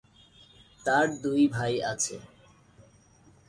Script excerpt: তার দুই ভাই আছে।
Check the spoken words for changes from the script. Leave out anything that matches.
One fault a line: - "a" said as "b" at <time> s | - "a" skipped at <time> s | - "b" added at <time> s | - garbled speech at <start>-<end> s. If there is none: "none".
none